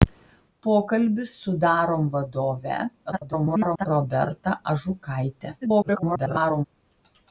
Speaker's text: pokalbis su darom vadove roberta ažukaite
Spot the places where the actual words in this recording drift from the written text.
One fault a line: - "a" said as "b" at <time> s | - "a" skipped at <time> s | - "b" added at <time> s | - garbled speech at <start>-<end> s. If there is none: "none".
- garbled speech at 3.1-3.9 s
- garbled speech at 5.6-6.7 s